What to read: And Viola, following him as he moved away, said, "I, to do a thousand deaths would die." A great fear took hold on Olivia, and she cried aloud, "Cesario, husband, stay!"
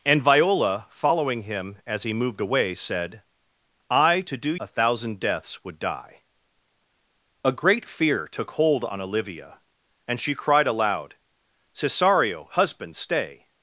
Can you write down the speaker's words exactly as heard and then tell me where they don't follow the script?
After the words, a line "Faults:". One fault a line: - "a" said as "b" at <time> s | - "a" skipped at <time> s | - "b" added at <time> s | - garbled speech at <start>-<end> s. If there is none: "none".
And Viola, following him as he moved away, said, "I, to do a thousand deaths would die." A great fear took hold on Olivia, and she cried aloud, "Cesario, husband, stay!"
Faults:
none